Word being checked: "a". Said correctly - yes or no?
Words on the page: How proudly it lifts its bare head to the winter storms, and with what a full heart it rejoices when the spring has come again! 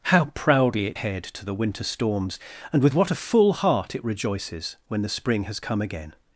yes